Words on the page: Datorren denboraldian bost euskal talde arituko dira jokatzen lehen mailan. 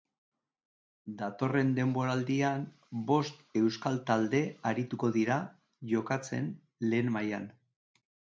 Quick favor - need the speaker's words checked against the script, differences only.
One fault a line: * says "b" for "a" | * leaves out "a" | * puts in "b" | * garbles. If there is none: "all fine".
all fine